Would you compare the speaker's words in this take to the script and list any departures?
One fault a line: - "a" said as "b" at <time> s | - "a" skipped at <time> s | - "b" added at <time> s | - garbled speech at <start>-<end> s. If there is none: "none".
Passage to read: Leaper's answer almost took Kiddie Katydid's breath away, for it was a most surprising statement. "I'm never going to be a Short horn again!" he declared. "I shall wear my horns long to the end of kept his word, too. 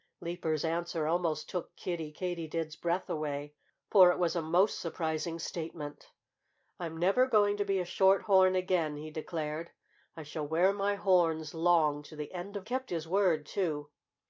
none